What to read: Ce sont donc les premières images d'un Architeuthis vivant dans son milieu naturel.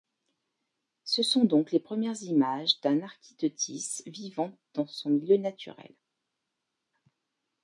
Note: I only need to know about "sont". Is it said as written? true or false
true